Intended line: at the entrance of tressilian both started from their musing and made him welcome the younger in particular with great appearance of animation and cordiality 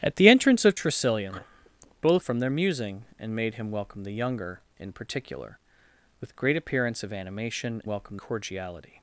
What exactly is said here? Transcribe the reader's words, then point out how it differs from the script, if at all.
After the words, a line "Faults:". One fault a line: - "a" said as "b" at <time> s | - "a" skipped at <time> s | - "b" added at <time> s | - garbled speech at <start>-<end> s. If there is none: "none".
at the entrance of tressilian both from their musing and made him welcome the younger in particular with great appearance of animation welcome cordiality
Faults:
- "started" skipped at 2.2 s
- "and" said as "welcome" at 7.9 s